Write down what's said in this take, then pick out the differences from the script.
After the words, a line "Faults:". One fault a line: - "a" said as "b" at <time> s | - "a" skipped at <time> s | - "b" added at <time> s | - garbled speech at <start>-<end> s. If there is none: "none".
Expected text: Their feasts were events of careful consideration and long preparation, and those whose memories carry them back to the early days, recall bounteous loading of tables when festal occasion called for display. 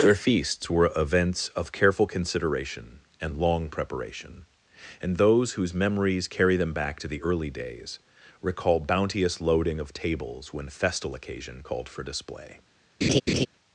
Their feasts were events of careful consideration and long preparation, and those whose memories carry them back to the early days, recall bounteous loading of tables when festal occasion called for display.
Faults:
none